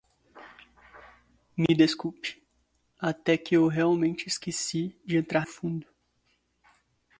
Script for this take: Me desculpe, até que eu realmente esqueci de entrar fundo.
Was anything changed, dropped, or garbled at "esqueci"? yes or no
no